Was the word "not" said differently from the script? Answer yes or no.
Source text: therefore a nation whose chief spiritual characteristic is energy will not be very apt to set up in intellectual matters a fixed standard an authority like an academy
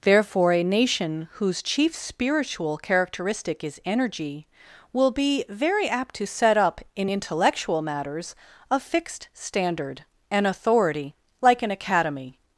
yes